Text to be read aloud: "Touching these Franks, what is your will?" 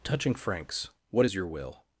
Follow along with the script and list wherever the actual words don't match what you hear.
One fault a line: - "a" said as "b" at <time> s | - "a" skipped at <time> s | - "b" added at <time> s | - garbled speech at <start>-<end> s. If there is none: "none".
- "these" skipped at 0.3 s